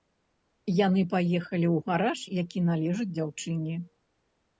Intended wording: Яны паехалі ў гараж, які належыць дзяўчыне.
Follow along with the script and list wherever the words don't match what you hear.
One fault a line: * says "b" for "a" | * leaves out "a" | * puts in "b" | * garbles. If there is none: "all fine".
all fine